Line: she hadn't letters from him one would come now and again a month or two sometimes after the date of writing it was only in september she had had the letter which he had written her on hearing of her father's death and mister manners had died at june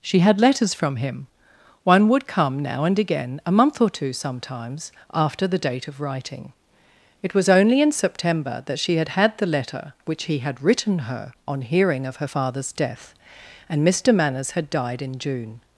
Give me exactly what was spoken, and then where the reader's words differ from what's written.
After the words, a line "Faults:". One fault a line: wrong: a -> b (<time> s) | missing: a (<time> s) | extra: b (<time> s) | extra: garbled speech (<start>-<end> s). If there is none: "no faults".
she had letters from him one would come now and again a month or two sometimes after the date of writing it was only in september that she had had the letter which he had written her on hearing of her father's death and mister manners had died in june
Faults:
wrong: hadn't -> had (0.2 s)
extra: that (8.7 s)
wrong: at -> in (15.0 s)